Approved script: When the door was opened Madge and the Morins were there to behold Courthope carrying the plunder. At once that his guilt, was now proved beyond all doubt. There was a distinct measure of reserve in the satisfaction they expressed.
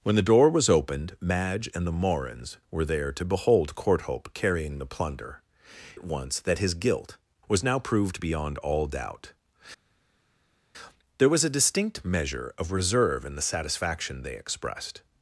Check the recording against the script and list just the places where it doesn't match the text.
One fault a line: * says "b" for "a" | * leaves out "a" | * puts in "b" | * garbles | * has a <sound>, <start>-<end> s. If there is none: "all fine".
all fine